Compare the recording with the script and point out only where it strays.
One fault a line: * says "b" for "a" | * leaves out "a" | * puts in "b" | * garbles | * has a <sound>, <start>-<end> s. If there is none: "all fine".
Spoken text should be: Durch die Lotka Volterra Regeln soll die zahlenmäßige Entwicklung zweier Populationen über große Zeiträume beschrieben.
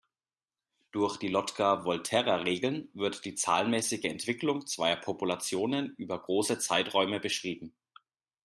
* says "wird" for "soll"